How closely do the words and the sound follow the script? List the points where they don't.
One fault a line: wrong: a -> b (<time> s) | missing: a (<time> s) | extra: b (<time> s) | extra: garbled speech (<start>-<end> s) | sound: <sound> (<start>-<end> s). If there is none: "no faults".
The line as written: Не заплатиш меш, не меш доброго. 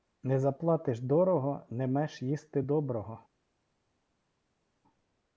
wrong: меш -> дорого (1.0 s)
extra: їсти (2.2 s)